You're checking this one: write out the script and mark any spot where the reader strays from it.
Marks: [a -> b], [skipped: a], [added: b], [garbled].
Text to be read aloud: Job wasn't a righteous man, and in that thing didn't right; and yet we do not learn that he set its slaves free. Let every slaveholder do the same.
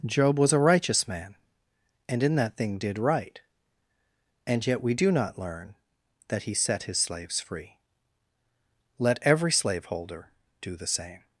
Job [wasn't -> was] a righteous man, and in that thing [didn't -> did] right; and yet we do not learn that he set [its -> his] slaves free. Let every slaveholder do the same.